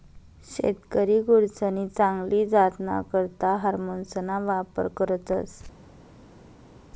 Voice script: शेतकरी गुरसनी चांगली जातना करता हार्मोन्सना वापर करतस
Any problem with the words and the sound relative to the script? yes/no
no